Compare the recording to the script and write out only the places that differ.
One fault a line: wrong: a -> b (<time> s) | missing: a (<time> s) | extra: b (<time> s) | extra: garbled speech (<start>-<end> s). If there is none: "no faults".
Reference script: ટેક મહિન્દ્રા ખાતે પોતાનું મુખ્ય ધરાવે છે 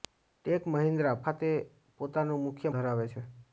no faults